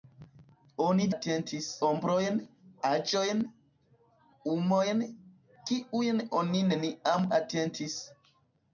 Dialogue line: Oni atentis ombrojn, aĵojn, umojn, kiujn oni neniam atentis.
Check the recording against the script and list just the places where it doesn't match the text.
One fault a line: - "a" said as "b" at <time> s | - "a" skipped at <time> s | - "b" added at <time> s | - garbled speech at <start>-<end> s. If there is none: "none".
none